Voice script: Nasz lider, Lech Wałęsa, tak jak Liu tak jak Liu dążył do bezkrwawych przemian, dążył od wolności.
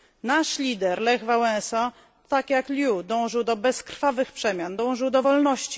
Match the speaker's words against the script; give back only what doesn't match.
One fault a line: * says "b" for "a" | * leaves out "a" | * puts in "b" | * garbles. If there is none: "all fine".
* leaves out "tak jak Liu"
* says "do" for "od"